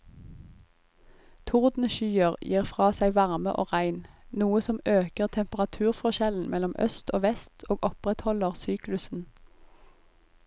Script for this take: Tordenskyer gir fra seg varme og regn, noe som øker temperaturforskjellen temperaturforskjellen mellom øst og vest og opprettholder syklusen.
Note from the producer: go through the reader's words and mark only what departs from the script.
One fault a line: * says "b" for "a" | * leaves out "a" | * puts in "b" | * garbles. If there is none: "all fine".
* leaves out "temperaturforskjellen"